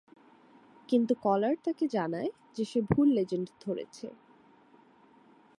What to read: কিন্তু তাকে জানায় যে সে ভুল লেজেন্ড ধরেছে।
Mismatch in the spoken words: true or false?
true